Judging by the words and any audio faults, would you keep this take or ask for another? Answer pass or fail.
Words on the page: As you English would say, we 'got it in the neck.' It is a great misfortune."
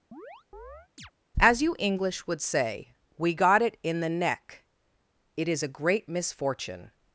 fail